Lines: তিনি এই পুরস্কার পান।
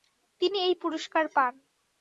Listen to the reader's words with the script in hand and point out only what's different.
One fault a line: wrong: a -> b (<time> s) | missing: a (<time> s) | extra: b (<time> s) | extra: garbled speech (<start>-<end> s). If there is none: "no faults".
no faults